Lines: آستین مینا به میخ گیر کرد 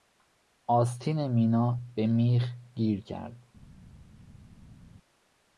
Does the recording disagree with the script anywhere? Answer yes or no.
no